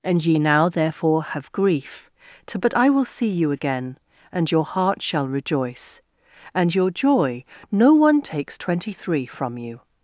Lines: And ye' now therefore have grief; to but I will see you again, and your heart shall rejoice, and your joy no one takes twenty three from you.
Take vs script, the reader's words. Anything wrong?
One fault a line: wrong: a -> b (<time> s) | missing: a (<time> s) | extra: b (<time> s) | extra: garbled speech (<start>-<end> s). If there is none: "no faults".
no faults